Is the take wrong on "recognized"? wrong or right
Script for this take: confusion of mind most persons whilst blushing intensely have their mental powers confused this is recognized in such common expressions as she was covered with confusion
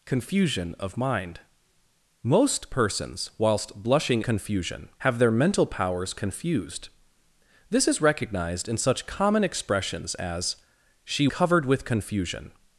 right